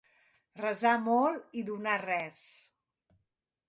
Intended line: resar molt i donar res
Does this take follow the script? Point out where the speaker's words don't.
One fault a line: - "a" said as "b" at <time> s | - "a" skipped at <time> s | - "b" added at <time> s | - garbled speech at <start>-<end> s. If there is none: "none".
none